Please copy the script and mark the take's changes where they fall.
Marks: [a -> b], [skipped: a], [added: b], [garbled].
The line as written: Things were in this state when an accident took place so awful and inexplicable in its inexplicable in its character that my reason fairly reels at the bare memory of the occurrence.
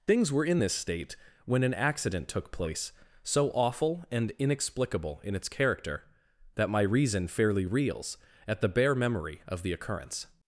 Things were in this state when an accident took place so awful and inexplicable in its [skipped: inexplicable in its] character that my reason fairly reels at the bare memory of the occurrence.